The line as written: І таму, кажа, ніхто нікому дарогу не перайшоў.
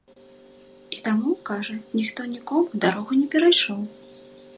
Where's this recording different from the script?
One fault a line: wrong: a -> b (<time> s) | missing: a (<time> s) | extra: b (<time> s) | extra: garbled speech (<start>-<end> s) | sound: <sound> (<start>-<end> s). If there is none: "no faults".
no faults